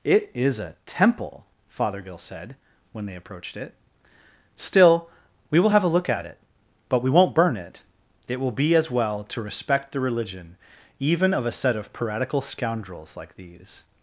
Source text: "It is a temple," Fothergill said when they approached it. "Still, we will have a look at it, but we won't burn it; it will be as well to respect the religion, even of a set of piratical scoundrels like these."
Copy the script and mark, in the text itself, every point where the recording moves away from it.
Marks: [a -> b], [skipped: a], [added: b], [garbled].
"It is a temple," Fothergill said when they approached it. "Still, we will have a look at it, but we won't burn it; it will be as well to respect the religion, even of a set of piratical scoundrels like these."